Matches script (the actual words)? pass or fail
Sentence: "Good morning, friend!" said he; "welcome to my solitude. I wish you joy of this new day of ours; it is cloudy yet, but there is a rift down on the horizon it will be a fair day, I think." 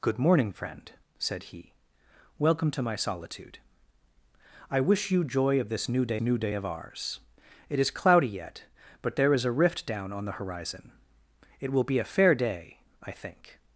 fail